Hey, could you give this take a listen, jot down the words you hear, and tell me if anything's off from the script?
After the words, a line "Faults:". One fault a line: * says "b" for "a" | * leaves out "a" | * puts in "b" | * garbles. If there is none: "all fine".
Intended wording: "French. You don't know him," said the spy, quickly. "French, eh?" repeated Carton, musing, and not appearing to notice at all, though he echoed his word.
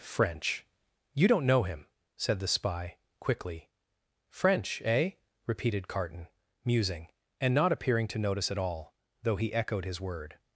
"French. You don't know him," said the spy, quickly. "French, eh?" repeated Carton, musing, and not appearing to notice at all, though he echoed his word.
Faults:
all fine